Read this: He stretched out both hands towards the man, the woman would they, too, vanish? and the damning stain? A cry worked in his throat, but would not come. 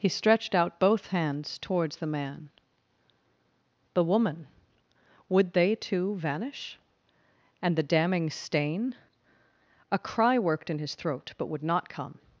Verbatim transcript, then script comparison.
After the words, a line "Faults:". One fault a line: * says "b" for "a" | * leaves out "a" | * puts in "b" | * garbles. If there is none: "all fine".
He stretched out both hands towards the man, the woman would they, too, vanish? and the damning stain? A cry worked in his throat, but would not come.
Faults:
all fine